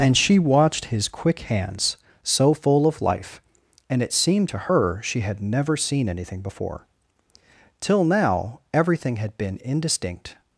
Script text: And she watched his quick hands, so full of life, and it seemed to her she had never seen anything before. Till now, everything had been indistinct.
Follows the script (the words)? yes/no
yes